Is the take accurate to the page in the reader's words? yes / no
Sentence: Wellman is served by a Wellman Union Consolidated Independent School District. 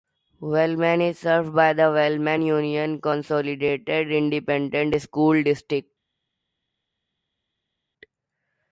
no